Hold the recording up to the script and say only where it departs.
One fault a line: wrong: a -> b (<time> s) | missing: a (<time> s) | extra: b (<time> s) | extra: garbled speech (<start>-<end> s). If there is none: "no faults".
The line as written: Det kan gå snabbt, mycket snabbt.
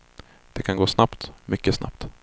no faults